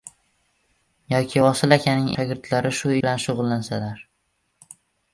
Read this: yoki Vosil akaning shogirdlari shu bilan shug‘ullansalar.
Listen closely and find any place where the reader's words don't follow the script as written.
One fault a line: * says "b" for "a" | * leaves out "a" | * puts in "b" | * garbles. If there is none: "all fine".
all fine